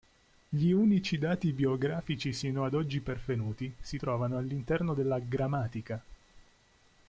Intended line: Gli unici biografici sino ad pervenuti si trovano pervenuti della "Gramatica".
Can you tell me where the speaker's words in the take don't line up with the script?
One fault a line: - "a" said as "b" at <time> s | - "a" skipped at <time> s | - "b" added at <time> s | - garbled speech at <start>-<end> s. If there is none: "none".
- "dati" added at 1.2 s
- "oggi" added at 2.7 s
- "pervenuti" said as "all'interno" at 4.4 s